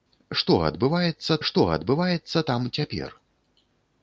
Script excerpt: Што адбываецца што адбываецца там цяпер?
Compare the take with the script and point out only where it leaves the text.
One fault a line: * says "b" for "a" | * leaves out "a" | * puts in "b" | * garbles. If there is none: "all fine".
all fine